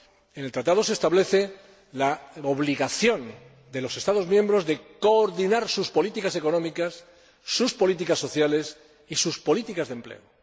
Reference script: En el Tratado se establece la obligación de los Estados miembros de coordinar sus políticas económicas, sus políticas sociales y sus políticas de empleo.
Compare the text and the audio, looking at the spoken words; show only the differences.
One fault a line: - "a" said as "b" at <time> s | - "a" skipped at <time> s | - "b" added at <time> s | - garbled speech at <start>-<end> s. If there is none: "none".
none